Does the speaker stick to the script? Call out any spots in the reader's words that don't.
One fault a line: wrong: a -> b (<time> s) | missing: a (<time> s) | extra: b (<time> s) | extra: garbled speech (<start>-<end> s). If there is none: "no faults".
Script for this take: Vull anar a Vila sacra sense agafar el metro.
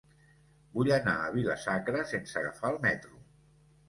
no faults